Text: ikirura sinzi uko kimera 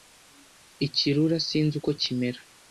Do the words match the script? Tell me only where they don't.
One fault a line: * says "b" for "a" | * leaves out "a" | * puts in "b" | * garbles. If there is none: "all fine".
all fine